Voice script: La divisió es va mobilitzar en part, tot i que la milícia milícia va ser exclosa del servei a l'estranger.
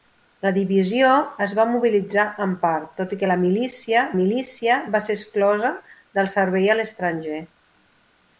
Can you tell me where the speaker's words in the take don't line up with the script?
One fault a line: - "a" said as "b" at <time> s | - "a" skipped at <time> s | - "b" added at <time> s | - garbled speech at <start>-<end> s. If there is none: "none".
none